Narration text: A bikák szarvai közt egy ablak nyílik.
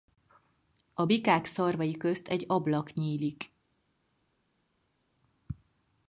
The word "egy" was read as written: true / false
true